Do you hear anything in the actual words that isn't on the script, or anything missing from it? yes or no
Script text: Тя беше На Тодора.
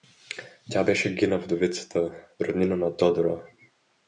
yes